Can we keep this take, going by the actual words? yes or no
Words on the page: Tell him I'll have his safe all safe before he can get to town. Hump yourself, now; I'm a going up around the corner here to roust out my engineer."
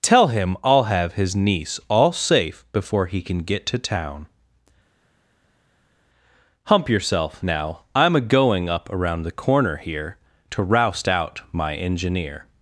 no